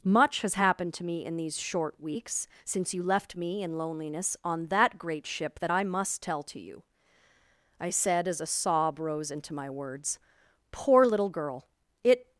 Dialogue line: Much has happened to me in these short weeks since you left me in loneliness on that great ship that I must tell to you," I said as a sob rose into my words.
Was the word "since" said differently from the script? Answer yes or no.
no